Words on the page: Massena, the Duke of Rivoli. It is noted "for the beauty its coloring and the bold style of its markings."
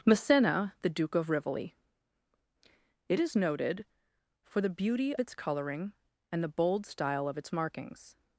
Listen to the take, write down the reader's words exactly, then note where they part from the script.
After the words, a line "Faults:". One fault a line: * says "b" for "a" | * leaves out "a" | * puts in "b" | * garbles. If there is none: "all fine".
Massena, the Duke of Rivoli. It is noted "for the beauty its coloring and the bold style of its markings."
Faults:
all fine